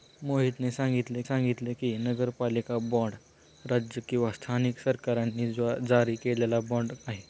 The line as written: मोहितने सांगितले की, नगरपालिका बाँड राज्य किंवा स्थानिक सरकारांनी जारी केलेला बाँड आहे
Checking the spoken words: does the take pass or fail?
fail